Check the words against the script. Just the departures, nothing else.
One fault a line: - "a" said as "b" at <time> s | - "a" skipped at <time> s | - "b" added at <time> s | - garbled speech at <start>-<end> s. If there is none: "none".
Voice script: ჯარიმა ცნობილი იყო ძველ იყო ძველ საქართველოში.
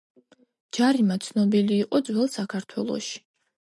- "იყო ძველ" skipped at 2.3 s